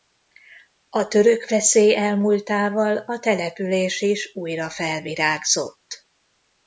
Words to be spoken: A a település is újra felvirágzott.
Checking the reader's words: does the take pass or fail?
fail